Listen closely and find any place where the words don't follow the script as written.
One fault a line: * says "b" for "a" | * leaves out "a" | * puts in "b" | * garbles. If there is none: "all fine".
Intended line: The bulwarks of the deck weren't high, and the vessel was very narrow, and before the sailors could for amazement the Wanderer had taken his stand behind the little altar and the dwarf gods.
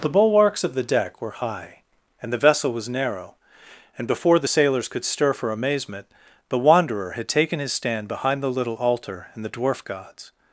* says "were" for "weren't"
* leaves out "very"
* puts in "stir"